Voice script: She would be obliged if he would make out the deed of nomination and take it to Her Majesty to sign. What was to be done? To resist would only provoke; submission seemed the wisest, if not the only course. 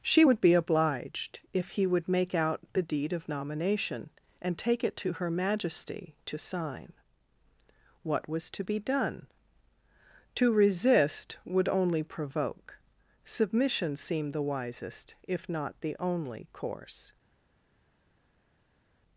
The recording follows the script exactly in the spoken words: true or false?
true